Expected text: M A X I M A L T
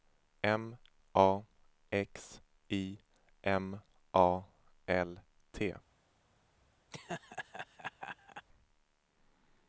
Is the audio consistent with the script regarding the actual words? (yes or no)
yes